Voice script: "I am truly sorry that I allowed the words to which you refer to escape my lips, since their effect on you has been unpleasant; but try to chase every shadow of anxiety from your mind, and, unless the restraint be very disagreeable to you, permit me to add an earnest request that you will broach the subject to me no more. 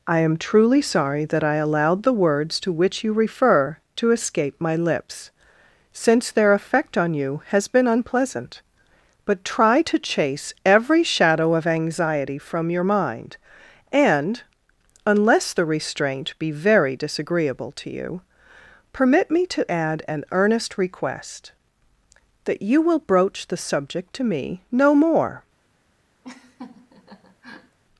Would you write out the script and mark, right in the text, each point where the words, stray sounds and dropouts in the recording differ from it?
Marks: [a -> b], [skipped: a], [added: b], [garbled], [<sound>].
"I am truly sorry that I allowed the words to which you refer to escape my lips, since their effect on you has been unpleasant; but try to chase every shadow of anxiety from your mind, and, unless the restraint be very disagreeable to you, permit me to add an earnest request that you will broach the subject to me no more. [laugh]